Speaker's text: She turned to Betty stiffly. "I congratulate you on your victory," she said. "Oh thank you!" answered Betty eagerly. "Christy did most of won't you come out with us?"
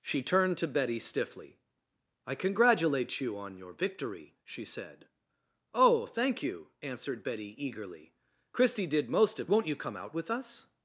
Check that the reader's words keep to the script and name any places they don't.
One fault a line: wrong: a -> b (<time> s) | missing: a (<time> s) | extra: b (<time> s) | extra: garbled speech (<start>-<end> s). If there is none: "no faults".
no faults